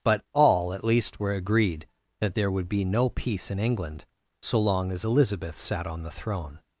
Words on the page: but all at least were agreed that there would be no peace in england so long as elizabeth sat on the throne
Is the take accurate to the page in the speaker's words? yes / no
yes